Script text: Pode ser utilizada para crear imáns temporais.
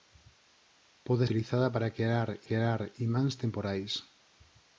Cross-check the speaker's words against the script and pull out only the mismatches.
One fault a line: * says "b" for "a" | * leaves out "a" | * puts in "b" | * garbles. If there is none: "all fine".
* leaves out "ser"
* puts in "crear"